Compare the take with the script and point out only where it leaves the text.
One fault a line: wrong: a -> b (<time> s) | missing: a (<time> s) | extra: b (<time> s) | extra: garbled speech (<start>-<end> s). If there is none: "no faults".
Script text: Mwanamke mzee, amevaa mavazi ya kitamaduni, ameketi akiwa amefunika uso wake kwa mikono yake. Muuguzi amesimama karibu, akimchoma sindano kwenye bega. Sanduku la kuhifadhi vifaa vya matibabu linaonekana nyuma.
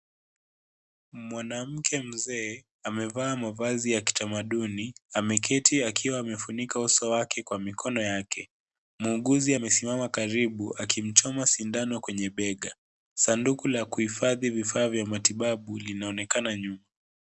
no faults